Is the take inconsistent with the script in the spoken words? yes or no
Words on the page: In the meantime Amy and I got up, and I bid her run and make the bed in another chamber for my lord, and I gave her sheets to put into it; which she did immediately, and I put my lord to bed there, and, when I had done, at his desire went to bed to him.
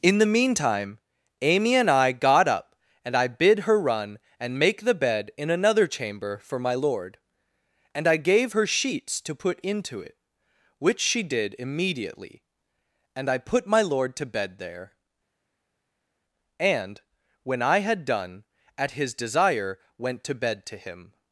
no